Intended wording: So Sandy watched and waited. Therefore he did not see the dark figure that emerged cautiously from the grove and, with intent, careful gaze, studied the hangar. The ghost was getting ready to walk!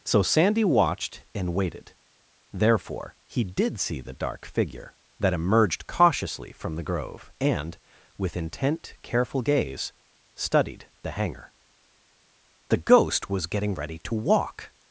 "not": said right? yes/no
no